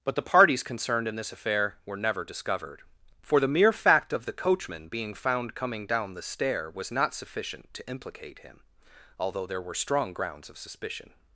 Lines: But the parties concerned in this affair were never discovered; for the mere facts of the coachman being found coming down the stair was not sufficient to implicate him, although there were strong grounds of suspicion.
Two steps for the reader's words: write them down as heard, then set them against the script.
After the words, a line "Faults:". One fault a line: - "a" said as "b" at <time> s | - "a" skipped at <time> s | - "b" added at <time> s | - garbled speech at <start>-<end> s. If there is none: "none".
But the parties concerned in this affair were never discovered; for the mere fact of the coachman being found coming down the stair was not sufficient to implicate him, although there were strong grounds of suspicion.
Faults:
- "facts" said as "fact" at 3.7 s